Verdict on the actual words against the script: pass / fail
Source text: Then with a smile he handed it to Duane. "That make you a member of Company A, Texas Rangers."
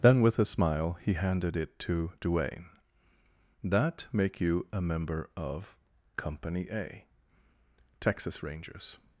pass